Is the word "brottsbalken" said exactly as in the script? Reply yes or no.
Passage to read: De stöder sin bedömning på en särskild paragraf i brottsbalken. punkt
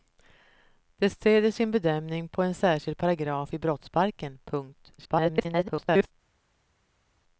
yes